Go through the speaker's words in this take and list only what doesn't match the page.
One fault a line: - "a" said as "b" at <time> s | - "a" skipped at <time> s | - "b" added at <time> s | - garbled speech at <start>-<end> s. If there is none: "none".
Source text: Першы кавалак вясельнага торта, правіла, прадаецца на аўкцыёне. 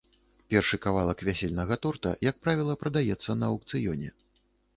- "як" added at 2.3 s